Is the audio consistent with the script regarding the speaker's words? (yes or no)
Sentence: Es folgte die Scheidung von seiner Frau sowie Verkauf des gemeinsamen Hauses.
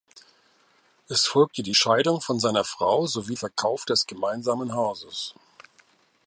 yes